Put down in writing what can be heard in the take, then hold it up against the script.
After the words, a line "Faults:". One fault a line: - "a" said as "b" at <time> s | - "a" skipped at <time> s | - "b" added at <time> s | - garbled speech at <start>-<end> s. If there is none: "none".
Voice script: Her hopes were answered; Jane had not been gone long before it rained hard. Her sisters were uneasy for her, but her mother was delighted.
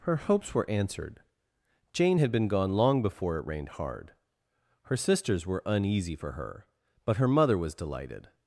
Her hopes were answered; Jane had been gone long before it rained hard. Her sisters were uneasy for her, but her mother was delighted.
Faults:
- "not" skipped at 2.3 s